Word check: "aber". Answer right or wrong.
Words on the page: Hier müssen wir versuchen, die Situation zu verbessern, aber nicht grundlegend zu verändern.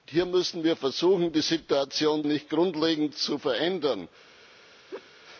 wrong